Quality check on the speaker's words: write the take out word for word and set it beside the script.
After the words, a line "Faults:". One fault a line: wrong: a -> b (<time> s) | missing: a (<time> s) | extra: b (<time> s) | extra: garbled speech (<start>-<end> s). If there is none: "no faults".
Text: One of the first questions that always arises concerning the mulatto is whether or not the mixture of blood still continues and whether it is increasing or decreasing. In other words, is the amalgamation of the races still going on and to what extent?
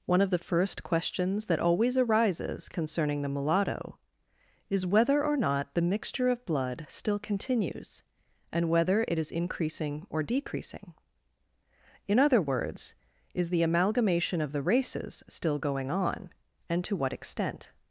One of the first questions that always arises concerning the mulatto is whether or not the mixture of blood still continues and whether it is increasing or decreasing. In other words, is the amalgamation of the races still going on and to what extent?
Faults:
no faults